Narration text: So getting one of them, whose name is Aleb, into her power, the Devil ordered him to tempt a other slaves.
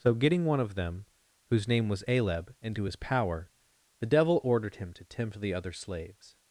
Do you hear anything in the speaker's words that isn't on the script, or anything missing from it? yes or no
yes